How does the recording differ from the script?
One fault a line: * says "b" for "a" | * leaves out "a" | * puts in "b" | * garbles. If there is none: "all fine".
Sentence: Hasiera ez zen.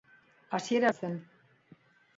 all fine